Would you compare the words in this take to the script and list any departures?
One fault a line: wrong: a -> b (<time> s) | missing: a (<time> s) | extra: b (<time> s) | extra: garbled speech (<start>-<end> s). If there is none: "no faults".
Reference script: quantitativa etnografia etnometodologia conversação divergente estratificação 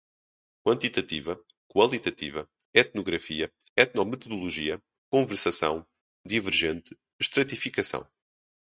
extra: qualitativa (1.7 s)